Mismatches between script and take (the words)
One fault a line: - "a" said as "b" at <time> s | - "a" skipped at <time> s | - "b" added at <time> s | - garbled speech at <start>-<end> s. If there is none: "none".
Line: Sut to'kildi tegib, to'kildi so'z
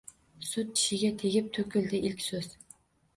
- "to'kildi" said as "tishiga" at 0.7 s
- "ilk" added at 2.1 s